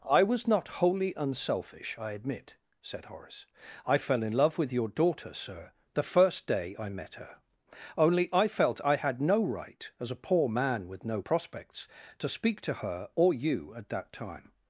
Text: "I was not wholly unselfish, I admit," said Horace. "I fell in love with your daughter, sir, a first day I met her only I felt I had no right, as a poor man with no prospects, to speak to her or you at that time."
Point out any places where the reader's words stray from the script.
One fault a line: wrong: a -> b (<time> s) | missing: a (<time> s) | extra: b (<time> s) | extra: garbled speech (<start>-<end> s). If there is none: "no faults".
wrong: a -> the (5.9 s)